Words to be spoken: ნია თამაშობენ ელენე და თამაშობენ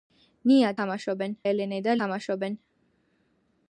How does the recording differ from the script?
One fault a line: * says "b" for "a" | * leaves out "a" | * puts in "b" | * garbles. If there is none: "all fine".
all fine